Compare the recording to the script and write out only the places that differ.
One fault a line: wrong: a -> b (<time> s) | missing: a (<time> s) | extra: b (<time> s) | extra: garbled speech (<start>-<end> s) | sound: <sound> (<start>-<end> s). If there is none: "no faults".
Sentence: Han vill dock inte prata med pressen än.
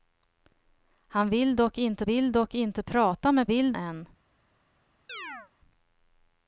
extra: vill dock inte (2.0 s)
wrong: pressen -> vill (3.5 s)
sound: chirp (5.1-5.5 s)